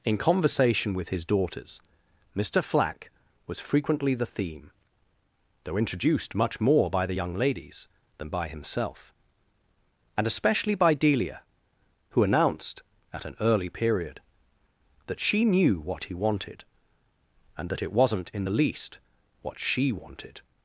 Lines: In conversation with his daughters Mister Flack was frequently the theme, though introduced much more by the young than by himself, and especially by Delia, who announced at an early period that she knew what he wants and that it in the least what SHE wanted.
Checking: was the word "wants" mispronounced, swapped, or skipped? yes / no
yes